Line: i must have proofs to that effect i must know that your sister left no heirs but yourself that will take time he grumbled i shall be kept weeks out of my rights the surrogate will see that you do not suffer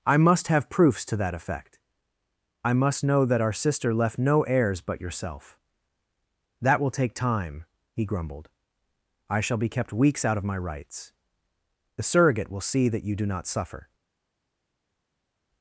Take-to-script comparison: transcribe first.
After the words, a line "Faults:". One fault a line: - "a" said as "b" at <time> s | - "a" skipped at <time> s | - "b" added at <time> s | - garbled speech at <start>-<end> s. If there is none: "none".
i must have proofs to that effect i must know that our sister left no heirs but yourself that will take time he grumbled i shall be kept weeks out of my rights the surrogate will see that you do not suffer
Faults:
- "your" said as "our" at 3.4 s